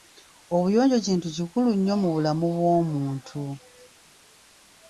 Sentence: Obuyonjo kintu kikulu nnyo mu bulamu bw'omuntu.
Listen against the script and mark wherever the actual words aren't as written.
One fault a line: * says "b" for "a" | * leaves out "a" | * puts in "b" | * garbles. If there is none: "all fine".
all fine